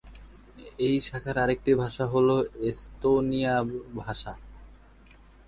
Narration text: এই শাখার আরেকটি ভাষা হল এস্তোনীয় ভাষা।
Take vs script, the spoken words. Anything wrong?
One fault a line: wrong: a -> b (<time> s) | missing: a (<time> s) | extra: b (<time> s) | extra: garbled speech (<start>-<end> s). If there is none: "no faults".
no faults